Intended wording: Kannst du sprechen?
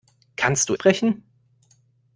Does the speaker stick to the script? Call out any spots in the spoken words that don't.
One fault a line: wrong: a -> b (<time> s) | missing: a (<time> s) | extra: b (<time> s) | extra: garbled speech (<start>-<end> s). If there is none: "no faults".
no faults